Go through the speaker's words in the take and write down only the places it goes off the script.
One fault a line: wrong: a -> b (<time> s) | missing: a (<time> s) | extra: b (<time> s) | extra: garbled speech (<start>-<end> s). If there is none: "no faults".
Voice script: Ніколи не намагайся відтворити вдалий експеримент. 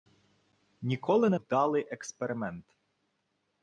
missing: намагайся відтворити (1.4 s)